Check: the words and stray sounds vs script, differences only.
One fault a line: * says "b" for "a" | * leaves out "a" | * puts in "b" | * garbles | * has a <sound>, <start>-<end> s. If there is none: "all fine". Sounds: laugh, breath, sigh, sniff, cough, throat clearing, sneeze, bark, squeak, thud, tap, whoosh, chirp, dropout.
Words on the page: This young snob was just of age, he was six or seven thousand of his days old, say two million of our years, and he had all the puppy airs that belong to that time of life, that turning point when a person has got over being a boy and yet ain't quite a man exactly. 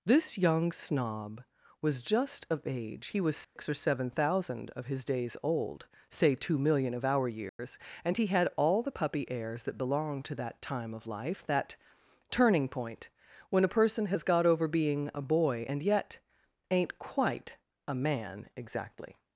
* has a dropout, 3.4-3.6 s
* has a dropout, 7.5-7.6 s